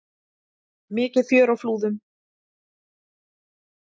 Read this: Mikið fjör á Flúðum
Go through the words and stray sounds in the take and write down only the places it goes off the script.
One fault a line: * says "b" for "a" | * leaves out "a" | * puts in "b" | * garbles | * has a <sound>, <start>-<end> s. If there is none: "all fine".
all fine